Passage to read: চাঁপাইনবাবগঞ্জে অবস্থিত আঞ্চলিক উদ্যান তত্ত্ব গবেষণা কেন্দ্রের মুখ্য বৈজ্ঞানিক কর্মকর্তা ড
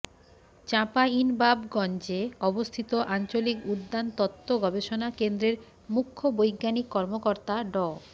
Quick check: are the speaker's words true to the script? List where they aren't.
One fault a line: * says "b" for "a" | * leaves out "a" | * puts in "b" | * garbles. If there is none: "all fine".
all fine